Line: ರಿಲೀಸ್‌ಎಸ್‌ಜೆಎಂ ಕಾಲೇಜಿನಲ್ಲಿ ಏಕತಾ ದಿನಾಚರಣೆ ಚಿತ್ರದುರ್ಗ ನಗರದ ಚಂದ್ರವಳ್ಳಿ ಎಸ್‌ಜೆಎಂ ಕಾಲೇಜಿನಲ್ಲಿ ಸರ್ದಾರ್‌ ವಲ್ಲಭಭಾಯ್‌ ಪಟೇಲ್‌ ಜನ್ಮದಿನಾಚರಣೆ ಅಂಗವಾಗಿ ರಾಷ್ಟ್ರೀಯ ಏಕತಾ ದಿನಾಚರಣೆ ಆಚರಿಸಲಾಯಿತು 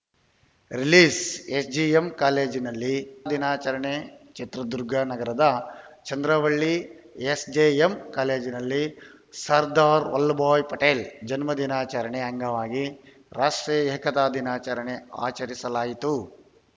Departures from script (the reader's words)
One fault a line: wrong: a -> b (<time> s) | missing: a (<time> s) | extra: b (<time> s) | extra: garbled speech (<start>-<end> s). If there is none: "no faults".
missing: ಏಕತಾ (2.9 s)